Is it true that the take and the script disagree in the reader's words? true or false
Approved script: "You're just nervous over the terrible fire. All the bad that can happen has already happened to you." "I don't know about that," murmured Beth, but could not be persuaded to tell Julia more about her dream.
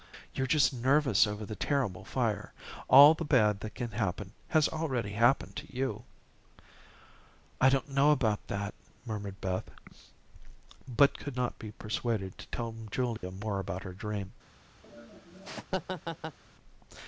false